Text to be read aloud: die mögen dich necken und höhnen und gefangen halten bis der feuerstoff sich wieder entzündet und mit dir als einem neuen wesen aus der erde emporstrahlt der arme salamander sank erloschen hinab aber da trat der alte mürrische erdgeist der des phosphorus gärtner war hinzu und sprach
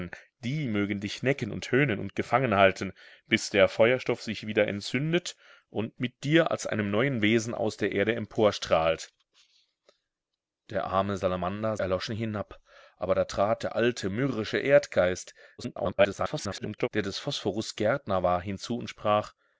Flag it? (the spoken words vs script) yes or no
yes